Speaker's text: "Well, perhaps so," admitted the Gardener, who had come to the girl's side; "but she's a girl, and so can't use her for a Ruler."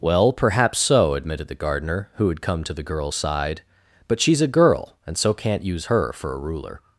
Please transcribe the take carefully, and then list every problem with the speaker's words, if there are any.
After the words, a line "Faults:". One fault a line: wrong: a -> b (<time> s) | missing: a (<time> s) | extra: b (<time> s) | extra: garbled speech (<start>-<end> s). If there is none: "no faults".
"Well, perhaps so," admitted the Gardener, who had come to the girl's side; "but she's a girl, and so can't use her for a Ruler."
Faults:
no faults